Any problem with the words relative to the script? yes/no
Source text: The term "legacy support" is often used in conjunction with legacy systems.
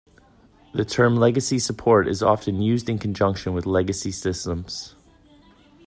no